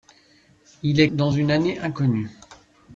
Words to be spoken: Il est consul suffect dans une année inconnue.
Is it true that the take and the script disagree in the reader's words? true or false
true